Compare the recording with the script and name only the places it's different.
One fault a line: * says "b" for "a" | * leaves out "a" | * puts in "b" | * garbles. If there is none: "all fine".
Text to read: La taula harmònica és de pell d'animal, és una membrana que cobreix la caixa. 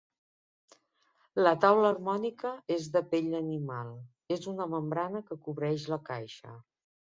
all fine